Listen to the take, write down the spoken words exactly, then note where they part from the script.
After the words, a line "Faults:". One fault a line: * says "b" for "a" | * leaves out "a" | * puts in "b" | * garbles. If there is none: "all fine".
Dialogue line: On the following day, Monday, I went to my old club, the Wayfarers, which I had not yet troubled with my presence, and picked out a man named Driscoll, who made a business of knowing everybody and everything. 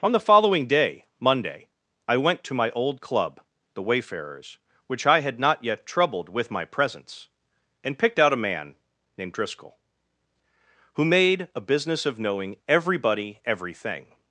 On the following day, Monday, I went to my old club, the Wayfarers, which I had not yet troubled with my presence, and picked out a man named Driscoll, who made a business of knowing everybody everything.
Faults:
* leaves out "and"